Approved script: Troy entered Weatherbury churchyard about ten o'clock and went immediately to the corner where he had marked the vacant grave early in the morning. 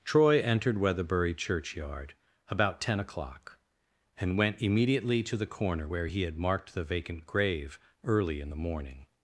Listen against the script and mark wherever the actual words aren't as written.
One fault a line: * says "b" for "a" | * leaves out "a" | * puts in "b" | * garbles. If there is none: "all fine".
all fine